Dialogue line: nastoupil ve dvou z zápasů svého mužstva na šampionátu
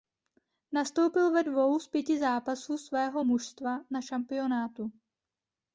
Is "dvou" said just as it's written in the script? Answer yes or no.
yes